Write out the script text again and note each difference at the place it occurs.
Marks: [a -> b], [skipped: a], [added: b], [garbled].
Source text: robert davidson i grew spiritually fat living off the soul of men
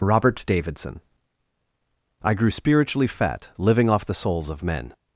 robert davidson i grew spiritually fat living off the [soul -> souls] of men